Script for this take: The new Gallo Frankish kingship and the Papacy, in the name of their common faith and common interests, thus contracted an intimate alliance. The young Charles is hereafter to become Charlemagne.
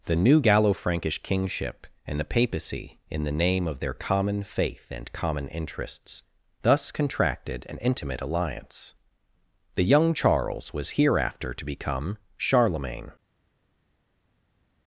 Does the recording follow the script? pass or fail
fail